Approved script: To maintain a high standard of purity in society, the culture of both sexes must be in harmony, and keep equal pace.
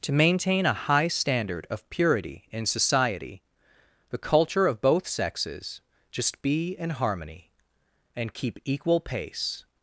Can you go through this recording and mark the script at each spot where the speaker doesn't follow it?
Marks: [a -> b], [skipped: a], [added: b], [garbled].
To maintain a high standard of purity in society, the culture of both sexes [must -> just] be in harmony, and keep equal pace.